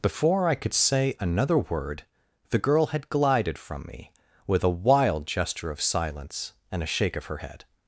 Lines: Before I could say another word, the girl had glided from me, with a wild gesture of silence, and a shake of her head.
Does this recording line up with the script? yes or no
yes